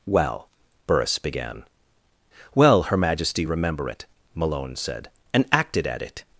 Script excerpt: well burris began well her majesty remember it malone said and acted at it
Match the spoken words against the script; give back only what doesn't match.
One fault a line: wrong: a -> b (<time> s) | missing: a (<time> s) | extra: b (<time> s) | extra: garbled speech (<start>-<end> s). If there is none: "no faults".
no faults